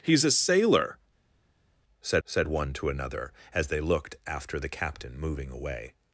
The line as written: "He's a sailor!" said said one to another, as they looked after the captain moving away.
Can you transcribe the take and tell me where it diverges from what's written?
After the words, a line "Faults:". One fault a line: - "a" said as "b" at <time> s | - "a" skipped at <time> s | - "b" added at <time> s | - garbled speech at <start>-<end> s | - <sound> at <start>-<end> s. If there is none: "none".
"He's a sailor!" said said one to another, as they looked after the captain moving away.
Faults:
none